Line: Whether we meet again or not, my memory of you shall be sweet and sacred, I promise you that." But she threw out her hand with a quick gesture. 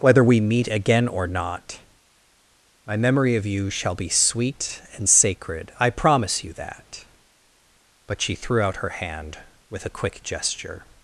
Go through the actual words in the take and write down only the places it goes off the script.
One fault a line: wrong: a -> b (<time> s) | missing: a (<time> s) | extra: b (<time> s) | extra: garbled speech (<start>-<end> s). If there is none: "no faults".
no faults